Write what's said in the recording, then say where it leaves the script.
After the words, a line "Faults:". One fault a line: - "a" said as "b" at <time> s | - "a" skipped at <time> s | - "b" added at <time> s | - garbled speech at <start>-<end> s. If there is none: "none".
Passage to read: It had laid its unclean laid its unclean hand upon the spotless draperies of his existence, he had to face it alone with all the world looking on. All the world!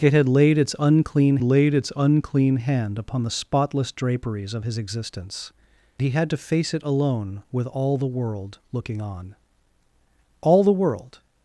It had laid its unclean laid its unclean hand upon the spotless draperies of his existence, he had to face it alone with all the world looking on. All the world!
Faults:
none